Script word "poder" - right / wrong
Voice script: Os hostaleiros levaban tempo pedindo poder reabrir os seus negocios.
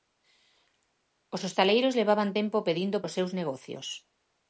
wrong